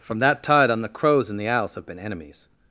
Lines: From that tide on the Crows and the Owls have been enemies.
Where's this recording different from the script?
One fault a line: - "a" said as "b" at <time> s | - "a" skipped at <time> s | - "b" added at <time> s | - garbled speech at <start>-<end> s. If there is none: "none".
none